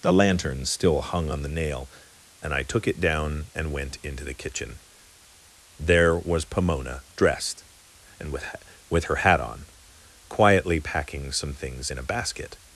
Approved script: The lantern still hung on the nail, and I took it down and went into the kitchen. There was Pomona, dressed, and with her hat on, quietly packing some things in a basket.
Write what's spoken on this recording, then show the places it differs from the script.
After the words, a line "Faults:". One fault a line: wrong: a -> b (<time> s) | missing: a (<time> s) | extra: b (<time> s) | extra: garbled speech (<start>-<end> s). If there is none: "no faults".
The lantern still hung on the nail, and I took it down and went into the kitchen. There was Pomona, dressed, and with with her hat on, quietly packing some things in a basket.
Faults:
extra: with (8.9 s)